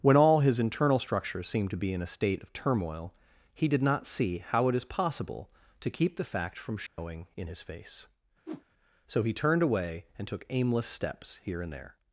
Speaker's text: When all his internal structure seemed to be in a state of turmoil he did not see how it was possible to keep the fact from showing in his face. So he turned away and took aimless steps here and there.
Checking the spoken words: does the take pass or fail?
fail